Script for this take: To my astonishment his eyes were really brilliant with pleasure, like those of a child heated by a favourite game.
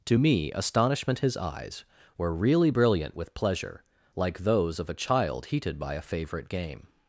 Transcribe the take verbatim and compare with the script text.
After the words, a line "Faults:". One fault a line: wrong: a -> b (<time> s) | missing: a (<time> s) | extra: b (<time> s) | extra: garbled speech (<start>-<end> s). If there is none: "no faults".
To me astonishment his eyes were really brilliant with pleasure, like those of a child heated by a favourite game.
Faults:
wrong: my -> me (0.1 s)